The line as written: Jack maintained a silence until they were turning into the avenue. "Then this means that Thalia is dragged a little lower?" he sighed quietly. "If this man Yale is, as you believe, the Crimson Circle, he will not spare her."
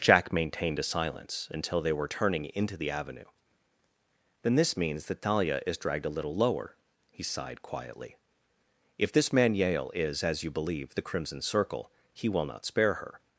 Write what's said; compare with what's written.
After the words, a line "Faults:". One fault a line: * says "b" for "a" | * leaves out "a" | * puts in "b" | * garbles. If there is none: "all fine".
Jack maintained a silence until they were turning into the avenue. "Then this means that Thalia is dragged a little lower?" he sighed quietly. "If this man Yale is, as you believe, the Crimson Circle, he will not spare her."
Faults:
all fine